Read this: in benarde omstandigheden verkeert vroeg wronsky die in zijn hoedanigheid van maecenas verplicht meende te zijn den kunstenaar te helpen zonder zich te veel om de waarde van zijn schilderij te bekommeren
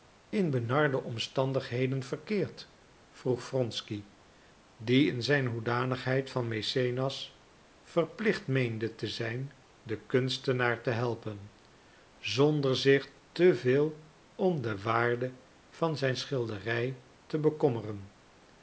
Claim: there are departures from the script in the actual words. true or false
false